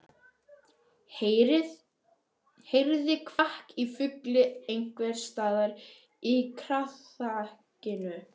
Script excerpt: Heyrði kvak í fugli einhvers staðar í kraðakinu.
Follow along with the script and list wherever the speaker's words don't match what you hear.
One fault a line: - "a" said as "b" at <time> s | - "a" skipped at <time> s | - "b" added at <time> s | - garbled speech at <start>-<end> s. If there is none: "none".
none